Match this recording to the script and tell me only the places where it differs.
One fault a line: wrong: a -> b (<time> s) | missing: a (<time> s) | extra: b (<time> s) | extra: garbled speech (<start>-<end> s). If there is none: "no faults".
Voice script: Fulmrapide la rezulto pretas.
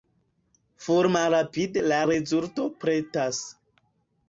no faults